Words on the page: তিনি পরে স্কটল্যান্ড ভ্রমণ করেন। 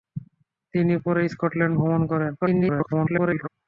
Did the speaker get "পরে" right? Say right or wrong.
right